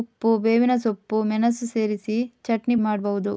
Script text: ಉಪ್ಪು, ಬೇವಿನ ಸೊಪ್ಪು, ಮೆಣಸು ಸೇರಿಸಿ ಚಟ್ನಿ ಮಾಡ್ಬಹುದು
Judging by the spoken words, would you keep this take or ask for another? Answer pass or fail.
pass